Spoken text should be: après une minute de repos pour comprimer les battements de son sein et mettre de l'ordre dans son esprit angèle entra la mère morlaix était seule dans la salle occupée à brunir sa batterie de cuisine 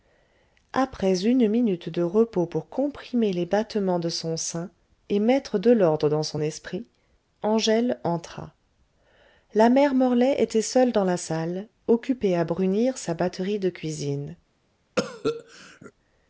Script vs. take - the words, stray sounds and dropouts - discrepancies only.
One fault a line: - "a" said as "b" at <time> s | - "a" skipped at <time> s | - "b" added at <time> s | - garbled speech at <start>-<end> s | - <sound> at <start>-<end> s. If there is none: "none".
- cough at 15.0-15.9 s